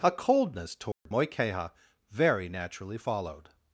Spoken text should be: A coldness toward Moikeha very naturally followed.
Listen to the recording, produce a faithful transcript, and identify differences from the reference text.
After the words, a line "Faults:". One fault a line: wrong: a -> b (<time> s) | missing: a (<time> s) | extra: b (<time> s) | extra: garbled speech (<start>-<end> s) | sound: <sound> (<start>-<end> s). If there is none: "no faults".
A coldness toward Moikeha very naturally followed.
Faults:
sound: dropout (0.9-1.1 s)